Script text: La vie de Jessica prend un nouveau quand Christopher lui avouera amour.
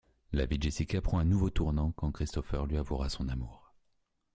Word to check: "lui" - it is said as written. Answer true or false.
true